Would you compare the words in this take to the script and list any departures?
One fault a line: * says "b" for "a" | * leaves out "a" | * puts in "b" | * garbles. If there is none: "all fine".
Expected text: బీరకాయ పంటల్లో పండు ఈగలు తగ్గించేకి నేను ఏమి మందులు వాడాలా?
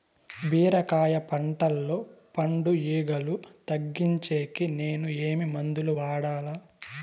all fine